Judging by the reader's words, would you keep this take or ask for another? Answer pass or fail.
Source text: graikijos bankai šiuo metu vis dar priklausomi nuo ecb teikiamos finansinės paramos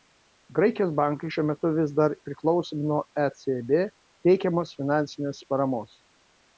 pass